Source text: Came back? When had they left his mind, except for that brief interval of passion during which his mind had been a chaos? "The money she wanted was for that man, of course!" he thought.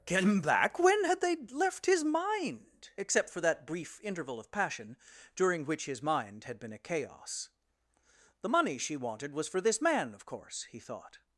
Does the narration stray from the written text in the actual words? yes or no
yes